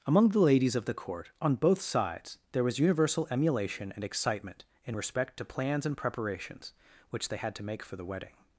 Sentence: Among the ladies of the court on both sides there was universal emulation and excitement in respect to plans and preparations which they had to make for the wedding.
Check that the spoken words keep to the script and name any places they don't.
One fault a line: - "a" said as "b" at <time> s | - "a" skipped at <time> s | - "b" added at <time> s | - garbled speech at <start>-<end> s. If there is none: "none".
none